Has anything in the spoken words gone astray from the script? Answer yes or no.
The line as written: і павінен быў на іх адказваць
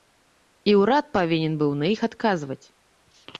yes